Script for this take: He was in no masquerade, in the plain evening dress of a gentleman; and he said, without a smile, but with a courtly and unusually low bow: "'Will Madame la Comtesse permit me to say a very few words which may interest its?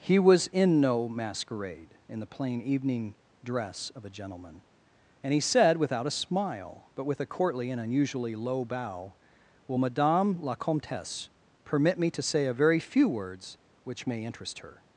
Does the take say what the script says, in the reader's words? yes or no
no